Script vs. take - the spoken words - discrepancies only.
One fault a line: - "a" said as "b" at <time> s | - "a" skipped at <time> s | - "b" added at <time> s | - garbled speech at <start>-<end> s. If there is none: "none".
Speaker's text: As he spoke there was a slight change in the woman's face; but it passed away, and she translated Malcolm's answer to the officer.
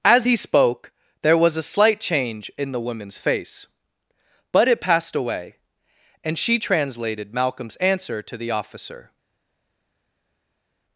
none